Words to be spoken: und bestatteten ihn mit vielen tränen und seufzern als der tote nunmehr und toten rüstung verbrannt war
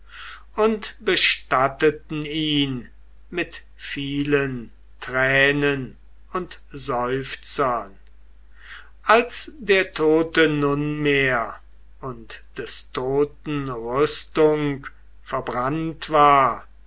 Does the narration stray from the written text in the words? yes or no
yes